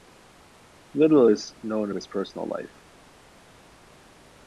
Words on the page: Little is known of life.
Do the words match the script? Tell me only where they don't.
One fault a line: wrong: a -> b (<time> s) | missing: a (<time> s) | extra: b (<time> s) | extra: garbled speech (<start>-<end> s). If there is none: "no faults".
extra: his personal (2.0 s)